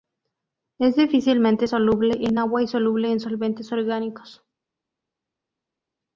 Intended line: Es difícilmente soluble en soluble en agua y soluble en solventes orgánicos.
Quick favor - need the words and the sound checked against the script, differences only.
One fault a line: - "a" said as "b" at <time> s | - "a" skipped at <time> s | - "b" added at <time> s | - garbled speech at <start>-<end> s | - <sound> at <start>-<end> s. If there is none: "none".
- "soluble en" skipped at 2.4 s